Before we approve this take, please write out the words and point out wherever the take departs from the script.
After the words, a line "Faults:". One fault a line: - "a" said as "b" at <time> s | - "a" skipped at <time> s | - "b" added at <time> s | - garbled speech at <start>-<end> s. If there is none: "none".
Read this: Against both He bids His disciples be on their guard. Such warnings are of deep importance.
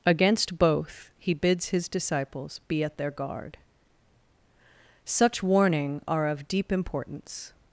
Against both He bids His disciples be at their guard. Such warning are of deep importance.
Faults:
- "on" said as "at" at 2.8 s
- "warnings" said as "warning" at 5.4 s